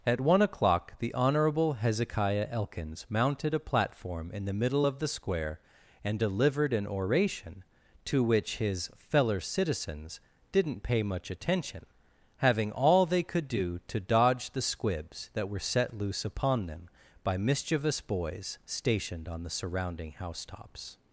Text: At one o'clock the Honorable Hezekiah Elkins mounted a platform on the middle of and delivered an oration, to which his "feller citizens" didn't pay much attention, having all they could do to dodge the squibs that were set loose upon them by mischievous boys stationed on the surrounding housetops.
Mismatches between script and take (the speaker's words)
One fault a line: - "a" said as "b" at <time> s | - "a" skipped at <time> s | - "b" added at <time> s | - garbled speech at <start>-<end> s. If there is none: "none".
- "on" said as "in" at 4.3 s
- "the Square" added at 5.0 s